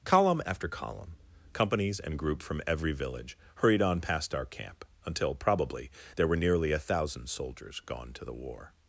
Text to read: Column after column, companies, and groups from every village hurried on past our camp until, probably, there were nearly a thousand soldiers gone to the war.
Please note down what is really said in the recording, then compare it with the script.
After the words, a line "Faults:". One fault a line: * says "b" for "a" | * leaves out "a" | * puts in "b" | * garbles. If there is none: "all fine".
Column after column, companies, and group from every village hurried on past our camp until, probably, there were nearly a thousand soldiers gone to the war.
Faults:
* says "group" for "groups"